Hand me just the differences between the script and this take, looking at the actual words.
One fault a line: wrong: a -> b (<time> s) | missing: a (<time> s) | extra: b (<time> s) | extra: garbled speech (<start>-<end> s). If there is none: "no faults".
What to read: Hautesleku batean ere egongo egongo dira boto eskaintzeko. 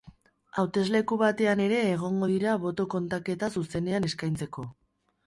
missing: egongo (2.3 s)
extra: kontaketa zuzenean (3.0 s)